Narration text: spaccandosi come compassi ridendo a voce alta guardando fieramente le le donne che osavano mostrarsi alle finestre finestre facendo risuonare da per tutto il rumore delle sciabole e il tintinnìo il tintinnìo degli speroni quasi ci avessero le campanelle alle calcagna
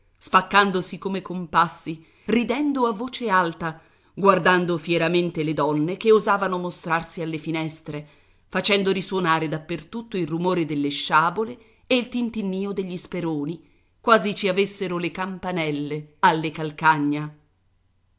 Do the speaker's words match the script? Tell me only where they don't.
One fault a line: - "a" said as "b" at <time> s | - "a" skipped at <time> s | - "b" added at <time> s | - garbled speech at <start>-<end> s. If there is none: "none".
- "le" skipped at 5.5 s
- "finestre" skipped at 8.1 s
- "il tintinnìo" skipped at 12.7 s